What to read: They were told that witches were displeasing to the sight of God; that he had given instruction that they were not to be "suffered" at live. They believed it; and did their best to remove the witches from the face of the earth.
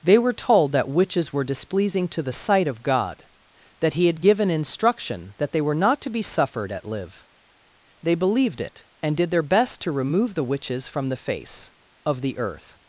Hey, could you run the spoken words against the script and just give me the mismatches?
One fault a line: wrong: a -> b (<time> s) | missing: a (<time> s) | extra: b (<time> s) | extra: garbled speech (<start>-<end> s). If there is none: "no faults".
no faults